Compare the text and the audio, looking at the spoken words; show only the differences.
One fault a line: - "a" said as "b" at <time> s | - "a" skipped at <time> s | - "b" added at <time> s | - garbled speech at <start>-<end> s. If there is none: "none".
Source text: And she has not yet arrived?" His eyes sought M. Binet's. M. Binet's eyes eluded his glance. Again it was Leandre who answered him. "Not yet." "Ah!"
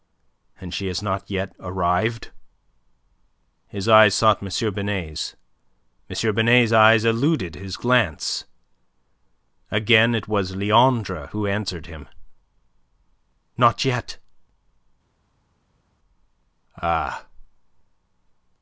none